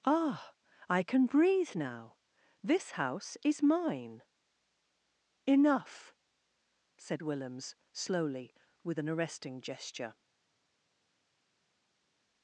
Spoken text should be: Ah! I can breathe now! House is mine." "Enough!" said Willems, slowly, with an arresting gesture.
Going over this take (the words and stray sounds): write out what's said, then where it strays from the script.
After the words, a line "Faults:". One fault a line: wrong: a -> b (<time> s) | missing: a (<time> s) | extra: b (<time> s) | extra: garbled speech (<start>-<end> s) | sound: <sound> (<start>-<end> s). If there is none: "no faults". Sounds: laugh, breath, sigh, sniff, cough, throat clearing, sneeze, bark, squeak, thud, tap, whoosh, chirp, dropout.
Ah! I can breathe now! This house is mine." "Enough!" said Willems, slowly, with an arresting gesture.
Faults:
extra: This (2.6 s)